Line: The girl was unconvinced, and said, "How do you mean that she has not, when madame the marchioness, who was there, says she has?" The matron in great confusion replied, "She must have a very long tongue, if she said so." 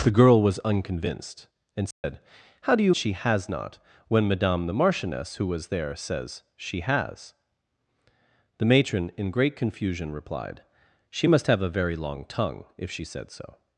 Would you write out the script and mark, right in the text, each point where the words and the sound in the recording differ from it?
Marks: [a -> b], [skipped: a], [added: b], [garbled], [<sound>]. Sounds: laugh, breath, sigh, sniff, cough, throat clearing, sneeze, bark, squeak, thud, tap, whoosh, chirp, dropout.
The girl was unconvinced, and said, [dropout] "How do you [skipped: mean that] she has not, when madame the marchioness, who was there, says she has?" The matron in great confusion replied, "She must have a very long tongue, if she said so."